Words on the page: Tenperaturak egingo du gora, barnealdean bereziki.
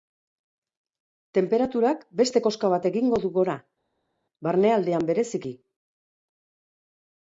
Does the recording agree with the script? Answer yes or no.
no